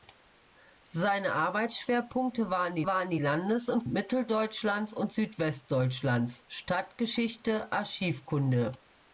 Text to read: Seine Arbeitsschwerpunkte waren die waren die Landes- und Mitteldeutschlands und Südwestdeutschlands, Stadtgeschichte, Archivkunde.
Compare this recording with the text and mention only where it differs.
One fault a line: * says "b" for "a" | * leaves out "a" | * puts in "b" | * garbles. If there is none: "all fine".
all fine